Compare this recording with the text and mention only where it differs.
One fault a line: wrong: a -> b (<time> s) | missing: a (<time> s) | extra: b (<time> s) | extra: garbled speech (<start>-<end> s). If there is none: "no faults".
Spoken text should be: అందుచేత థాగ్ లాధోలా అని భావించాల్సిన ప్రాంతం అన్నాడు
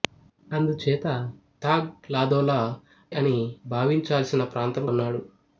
no faults